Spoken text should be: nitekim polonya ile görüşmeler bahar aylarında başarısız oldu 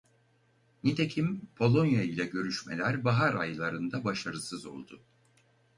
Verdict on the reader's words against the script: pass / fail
pass